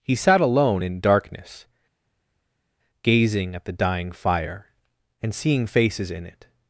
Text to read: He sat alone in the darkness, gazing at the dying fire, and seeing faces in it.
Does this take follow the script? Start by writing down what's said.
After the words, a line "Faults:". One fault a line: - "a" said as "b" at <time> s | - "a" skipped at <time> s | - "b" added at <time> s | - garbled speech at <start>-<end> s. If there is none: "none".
He sat alone in darkness, gazing at the dying fire, and seeing faces in it.
Faults:
- "the" skipped at 1.0 s